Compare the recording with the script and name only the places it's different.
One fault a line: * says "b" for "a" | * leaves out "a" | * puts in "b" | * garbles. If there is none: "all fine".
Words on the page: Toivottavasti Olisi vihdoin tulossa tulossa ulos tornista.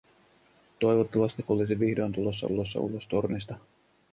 all fine